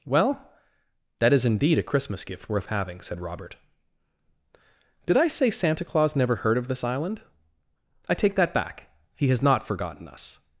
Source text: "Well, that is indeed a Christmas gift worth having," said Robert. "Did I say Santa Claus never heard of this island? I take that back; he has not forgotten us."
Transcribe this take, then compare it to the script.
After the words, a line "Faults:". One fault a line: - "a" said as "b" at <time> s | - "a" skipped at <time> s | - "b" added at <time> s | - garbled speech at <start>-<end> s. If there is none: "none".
"Well, that is indeed a Christmas gift worth having," said Robert. "Did I say Santa Claus never heard of this island? I take that back; he has not forgotten us."
Faults:
none